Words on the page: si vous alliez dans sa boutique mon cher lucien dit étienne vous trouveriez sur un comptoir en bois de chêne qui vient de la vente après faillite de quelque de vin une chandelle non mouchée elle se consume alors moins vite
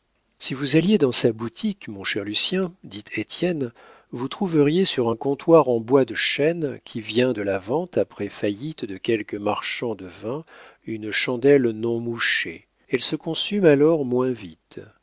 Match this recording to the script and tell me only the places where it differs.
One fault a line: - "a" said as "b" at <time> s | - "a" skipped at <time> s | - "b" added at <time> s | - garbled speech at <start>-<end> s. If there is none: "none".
- "marchand" added at 9.4 s